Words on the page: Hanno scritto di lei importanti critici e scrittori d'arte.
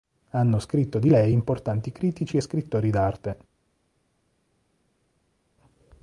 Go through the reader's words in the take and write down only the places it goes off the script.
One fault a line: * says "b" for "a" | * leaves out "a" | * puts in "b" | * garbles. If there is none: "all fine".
all fine